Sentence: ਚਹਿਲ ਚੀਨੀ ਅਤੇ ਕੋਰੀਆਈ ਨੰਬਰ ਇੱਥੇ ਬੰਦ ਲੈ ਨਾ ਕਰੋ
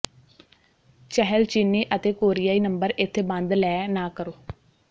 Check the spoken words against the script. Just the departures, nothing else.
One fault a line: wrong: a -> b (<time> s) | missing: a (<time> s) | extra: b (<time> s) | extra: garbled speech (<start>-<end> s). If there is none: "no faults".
no faults